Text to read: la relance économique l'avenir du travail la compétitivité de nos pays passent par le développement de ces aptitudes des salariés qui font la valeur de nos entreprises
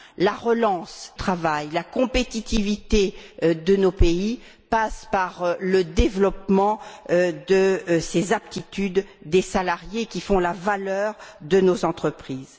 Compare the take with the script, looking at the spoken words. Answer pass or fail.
fail